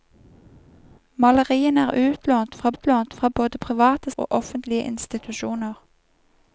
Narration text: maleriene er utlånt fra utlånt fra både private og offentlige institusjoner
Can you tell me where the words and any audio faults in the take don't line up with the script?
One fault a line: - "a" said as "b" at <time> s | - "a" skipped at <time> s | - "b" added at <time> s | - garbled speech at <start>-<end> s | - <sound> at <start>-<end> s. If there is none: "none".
none